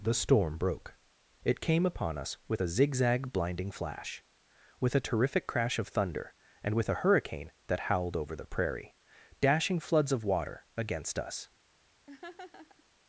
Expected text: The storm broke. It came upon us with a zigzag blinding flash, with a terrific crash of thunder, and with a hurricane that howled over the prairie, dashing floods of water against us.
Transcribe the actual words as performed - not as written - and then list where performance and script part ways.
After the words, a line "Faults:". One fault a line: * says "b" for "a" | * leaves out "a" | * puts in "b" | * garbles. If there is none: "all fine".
The storm broke. It came upon us with a zigzag blinding flash, with a terrific crash of thunder, and with a hurricane that howled over the prairie, dashing floods of water against us.
Faults:
all fine